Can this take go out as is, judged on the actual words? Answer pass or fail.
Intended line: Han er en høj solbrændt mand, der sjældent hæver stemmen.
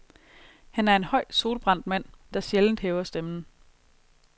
pass